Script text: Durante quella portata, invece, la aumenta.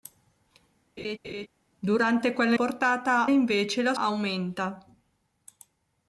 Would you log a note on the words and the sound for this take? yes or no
yes